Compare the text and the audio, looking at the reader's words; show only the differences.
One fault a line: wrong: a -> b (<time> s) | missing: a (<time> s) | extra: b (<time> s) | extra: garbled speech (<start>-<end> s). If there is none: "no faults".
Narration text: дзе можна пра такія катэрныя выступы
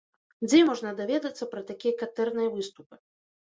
extra: даведацца (1.0 s)